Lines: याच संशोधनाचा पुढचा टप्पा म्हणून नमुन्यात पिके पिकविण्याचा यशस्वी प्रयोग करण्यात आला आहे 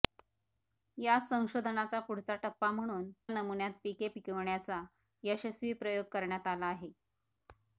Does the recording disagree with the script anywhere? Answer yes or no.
no